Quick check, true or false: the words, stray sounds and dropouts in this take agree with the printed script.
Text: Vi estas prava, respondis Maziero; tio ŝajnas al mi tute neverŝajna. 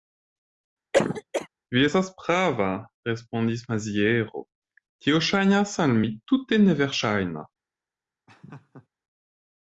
false